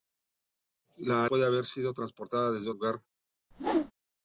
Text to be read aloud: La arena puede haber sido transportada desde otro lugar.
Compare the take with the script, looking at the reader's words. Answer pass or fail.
fail